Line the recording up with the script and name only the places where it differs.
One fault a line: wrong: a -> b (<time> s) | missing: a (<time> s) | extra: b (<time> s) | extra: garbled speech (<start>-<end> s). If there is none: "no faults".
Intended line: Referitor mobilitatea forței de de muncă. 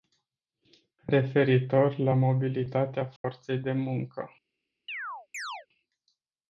extra: la (2.0 s)
missing: de (3.7 s)